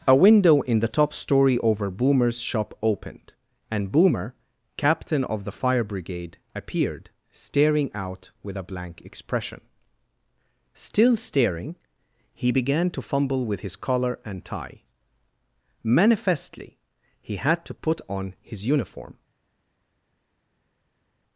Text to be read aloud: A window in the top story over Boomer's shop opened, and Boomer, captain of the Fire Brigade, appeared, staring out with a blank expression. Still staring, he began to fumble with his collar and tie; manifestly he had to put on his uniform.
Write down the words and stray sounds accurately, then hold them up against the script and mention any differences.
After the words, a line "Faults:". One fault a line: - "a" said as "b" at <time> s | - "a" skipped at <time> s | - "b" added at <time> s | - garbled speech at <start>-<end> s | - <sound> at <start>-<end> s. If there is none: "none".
A window in the top story over Boomer's shop opened, and Boomer, captain of the Fire Brigade, appeared, staring out with a blank expression. Still staring, he began to fumble with his collar and tie; manifestly he had to put on his uniform.
Faults:
none